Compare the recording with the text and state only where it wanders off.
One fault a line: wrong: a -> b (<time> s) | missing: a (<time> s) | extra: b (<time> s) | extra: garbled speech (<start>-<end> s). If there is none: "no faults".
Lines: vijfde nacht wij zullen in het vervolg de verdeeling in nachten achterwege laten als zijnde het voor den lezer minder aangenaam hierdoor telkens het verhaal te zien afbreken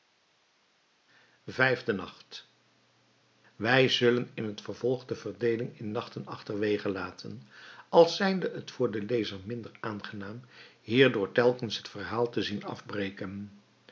no faults